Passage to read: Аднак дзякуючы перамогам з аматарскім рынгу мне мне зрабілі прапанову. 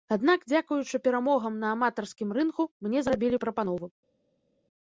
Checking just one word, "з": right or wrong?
wrong